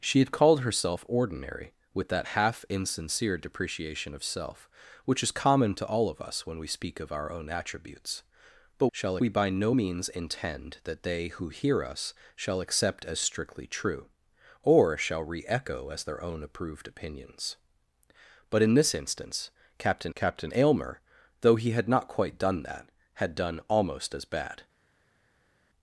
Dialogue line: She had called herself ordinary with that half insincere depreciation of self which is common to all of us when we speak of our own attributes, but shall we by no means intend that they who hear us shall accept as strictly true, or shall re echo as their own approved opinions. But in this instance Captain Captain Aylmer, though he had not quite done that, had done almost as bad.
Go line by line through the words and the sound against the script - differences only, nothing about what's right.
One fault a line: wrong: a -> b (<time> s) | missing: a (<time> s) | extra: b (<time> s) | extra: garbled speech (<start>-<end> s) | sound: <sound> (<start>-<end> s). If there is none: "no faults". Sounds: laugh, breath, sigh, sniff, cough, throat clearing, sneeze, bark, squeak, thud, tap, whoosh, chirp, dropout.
no faults